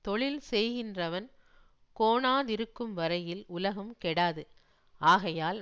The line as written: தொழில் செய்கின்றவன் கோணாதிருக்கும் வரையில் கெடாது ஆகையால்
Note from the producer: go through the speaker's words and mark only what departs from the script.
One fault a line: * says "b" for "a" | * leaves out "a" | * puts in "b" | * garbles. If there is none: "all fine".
* puts in "உலகம்"